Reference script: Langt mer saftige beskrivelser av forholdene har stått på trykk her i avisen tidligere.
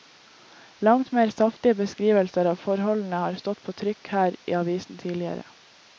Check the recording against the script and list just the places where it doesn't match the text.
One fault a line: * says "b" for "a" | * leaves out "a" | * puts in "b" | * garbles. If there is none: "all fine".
all fine